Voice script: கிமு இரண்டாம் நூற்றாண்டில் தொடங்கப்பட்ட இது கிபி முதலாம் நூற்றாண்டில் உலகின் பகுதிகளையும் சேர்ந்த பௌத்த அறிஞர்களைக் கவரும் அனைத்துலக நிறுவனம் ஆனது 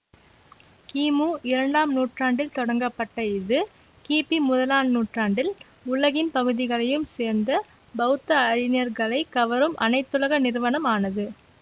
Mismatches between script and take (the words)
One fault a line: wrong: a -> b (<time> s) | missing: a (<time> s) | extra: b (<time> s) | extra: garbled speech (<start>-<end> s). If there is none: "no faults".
no faults